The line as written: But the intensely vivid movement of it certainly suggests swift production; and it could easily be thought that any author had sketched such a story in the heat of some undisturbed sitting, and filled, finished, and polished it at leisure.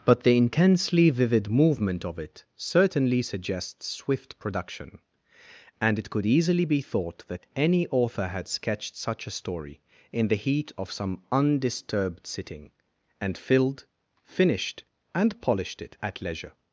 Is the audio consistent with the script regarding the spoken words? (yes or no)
yes